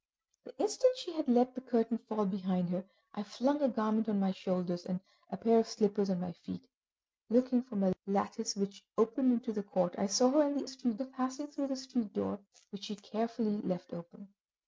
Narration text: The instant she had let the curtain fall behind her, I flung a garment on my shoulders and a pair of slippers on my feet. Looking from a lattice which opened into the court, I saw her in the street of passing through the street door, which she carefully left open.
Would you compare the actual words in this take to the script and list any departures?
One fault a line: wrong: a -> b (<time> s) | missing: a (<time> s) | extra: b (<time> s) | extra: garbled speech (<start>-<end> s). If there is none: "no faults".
no faults